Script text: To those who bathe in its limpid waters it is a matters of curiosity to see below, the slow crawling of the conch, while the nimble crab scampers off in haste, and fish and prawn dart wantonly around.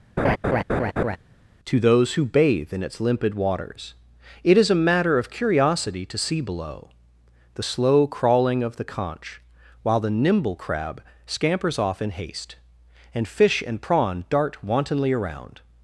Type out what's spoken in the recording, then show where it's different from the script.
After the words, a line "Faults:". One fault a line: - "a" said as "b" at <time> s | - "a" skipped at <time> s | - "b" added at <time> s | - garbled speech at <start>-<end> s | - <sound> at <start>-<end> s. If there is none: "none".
To those who bathe in its limpid waters it is a matter of curiosity to see below, the slow crawling of the conch, while the nimble crab scampers off in haste, and fish and prawn dart wantonly around.
Faults:
- laugh at 0.2-1.2 s
- "matters" said as "matter" at 4.8 s